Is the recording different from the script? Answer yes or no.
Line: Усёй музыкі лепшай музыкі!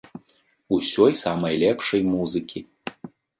yes